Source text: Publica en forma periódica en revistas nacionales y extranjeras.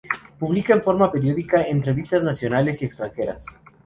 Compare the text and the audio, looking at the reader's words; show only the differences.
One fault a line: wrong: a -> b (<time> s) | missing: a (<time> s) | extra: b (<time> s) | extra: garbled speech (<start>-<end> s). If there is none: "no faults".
no faults